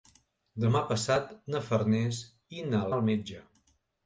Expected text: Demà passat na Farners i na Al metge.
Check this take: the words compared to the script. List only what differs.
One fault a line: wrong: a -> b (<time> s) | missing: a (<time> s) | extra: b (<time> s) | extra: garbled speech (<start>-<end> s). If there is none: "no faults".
no faults